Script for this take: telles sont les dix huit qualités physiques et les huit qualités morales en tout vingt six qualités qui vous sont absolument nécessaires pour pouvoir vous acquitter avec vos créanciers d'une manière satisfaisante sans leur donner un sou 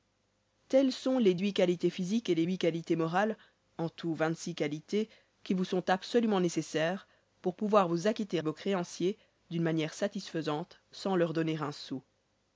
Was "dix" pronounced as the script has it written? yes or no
no